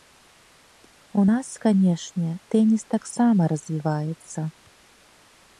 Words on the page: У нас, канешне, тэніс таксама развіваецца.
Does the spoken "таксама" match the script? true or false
true